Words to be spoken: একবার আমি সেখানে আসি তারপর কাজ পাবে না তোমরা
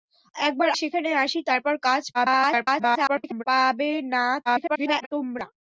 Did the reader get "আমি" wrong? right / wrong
wrong